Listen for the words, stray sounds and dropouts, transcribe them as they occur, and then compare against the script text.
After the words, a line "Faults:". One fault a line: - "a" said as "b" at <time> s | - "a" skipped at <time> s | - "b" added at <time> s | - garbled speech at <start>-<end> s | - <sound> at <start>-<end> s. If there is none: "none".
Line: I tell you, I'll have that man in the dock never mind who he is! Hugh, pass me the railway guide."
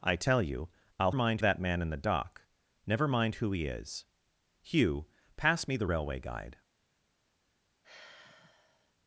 I tell you, I'll mind that man in the dock never mind who he is! Hugh, pass me the railway guide."
Faults:
- "have" said as "mind" at 1.1 s
- sigh at 7.8-8.9 s